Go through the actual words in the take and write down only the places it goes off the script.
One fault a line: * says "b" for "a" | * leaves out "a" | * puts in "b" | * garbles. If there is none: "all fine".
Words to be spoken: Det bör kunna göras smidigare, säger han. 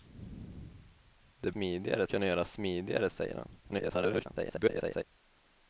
* says "smidigare" for "bör"
* garbles